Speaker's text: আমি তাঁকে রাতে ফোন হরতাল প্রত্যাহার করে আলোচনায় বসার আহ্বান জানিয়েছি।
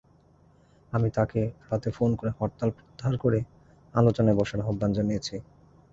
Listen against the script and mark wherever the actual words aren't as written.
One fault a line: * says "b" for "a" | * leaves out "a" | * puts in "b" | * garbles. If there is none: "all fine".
* puts in "করে"